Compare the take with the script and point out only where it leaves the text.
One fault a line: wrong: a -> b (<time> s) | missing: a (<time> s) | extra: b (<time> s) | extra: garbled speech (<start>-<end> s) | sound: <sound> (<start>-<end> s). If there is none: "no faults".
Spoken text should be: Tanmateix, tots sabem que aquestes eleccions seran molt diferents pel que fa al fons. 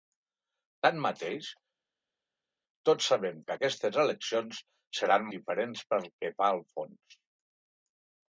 missing: molt (5.3 s)